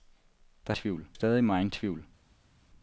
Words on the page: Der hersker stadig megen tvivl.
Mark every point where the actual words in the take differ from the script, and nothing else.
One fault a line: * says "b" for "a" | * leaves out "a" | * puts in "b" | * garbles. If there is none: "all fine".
* says "tvivl" for "hersker"